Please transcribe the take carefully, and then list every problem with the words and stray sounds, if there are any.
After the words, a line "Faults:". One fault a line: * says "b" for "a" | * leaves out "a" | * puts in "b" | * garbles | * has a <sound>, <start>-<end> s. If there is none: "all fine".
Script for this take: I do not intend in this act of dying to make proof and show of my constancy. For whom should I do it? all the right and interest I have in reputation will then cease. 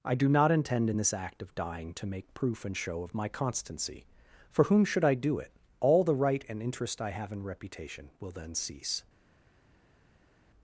I do not intend in this act of dying to make proof and show of my constancy. For whom should I do it? all the right and interest I have in reputation will then cease.
Faults:
all fine